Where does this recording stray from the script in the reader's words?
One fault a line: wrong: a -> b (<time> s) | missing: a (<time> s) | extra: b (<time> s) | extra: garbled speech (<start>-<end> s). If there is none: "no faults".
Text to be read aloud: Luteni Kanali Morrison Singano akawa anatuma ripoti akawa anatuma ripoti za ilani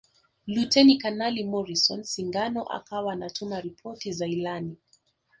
missing: akawa anatuma ripoti (4.1 s)